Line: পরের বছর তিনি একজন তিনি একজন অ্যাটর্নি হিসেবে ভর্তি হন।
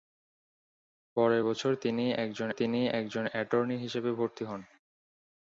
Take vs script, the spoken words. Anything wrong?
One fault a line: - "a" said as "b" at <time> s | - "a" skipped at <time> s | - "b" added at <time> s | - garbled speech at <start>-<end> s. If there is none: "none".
none